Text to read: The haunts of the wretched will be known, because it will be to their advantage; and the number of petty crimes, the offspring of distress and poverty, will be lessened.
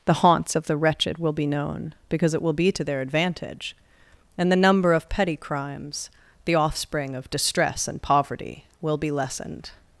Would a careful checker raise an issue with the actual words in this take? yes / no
no